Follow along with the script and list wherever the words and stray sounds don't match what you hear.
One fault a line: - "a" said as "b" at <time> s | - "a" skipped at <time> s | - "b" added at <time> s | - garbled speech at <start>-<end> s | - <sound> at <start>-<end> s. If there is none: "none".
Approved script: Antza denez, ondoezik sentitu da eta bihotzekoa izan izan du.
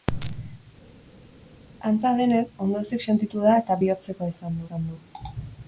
none